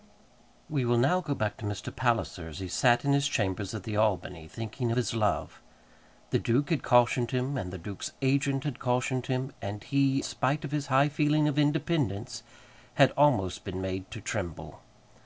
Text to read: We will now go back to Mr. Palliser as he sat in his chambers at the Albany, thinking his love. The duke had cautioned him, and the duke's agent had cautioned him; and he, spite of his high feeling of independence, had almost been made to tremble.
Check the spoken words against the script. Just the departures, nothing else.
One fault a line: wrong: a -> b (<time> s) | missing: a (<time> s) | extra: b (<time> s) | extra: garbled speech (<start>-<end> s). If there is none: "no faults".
no faults